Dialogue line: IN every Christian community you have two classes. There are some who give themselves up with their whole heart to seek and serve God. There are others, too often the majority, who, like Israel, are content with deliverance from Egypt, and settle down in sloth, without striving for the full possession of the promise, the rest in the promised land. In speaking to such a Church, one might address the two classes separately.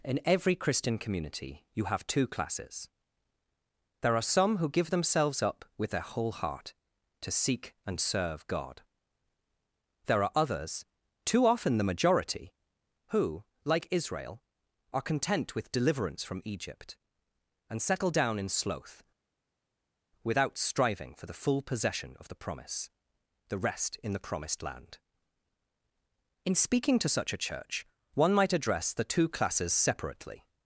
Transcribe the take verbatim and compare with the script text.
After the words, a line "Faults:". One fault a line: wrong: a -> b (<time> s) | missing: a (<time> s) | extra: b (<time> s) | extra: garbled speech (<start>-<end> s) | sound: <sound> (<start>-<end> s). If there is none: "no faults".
IN every Christian community you have two classes. There are some who give themselves up with their whole heart to seek and serve God. There are others, too often the majority, who, like Israel, are content with deliverance from Egypt, and settle down in sloth, without striving for the full possession of the promise, the rest in the promised land. In speaking to such a Church, one might address the two classes separately.
Faults:
no faults